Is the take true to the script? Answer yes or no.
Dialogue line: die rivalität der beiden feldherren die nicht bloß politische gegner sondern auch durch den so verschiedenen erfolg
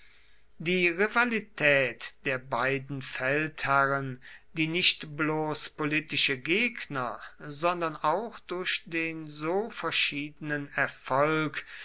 yes